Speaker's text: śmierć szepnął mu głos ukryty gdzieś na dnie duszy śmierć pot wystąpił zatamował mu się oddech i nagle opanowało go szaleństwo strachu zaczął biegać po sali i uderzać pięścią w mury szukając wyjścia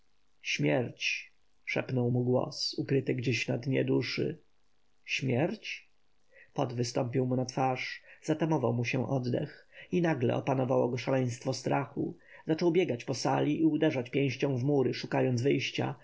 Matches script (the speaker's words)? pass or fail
fail